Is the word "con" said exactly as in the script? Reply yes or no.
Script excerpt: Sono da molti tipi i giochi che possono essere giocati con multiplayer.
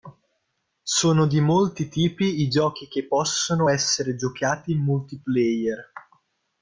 no